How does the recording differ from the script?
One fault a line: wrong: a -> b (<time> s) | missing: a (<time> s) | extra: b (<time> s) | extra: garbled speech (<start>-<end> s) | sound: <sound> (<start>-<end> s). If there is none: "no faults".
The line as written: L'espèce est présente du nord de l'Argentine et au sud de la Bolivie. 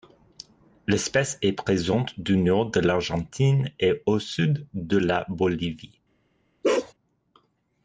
sound: bark (6.6-6.9 s)